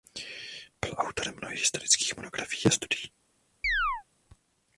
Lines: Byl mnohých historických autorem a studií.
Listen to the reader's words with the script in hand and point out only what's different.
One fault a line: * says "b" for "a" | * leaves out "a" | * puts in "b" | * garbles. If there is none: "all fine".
* puts in "autorem"
* says "monografií" for "autorem"